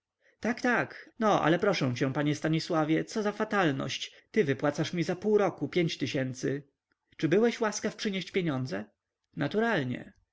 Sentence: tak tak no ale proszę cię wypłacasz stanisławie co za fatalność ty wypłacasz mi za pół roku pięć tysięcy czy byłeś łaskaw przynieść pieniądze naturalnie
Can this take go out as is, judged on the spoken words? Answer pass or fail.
fail